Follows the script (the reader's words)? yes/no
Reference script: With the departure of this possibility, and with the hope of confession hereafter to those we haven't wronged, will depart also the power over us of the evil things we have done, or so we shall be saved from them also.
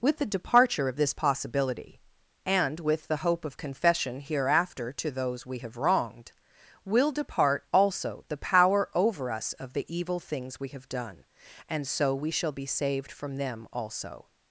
no